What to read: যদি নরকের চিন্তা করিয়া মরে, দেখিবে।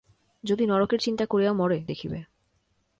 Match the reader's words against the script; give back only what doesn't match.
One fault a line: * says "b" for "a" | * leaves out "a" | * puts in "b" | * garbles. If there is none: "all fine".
all fine